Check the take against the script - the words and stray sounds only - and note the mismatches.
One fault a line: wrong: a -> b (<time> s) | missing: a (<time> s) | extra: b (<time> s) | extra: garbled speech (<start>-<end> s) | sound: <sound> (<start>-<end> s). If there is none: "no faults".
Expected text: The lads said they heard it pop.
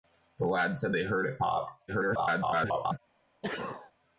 extra: garbled speech (1.9-3.0 s)
sound: sneeze (3.4-3.9 s)